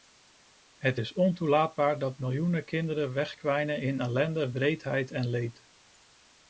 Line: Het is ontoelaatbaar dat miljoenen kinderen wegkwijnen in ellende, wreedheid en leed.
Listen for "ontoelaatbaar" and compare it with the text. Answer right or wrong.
right